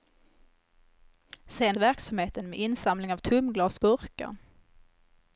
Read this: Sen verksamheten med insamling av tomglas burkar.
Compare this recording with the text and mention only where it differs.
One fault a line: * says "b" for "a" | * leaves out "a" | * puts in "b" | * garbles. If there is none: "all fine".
all fine